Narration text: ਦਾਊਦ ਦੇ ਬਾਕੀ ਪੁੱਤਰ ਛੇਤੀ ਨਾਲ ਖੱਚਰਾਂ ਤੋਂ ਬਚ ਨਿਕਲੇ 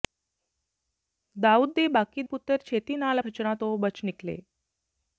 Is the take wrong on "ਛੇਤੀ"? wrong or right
right